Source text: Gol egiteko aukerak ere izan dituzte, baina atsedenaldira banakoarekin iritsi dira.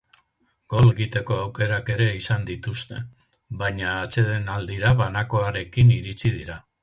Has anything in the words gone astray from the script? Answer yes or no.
no